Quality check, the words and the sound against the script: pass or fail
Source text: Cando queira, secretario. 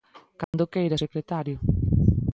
fail